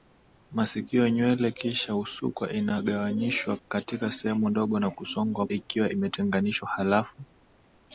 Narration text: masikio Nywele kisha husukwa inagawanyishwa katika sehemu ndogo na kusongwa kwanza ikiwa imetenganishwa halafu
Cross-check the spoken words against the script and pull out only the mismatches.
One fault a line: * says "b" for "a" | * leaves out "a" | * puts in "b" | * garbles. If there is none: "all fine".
* leaves out "kwanza"